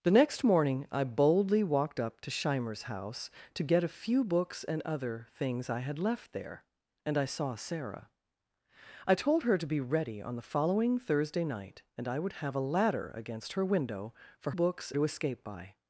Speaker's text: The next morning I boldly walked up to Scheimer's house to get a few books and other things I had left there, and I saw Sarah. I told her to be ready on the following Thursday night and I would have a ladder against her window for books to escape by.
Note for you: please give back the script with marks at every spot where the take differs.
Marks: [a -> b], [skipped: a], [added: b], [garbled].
The next morning I boldly walked up to Scheimer's house to get a few books and other things I had left there, and I saw Sarah. I told her to be ready on the following Thursday night and I would have a ladder against her window for books to escape by.